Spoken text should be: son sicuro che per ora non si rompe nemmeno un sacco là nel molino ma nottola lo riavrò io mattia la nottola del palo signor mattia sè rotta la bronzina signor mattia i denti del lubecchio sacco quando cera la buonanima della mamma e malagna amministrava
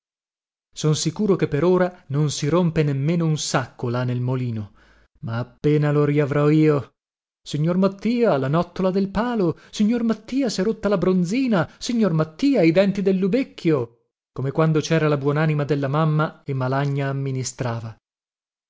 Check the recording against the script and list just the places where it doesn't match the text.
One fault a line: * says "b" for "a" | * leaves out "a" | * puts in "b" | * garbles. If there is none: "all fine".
* says "appena" for "nottola"
* puts in "signor"
* says "come" for "sacco"